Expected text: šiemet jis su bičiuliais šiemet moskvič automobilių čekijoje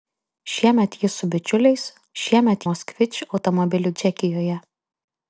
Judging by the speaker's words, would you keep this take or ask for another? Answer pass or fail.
pass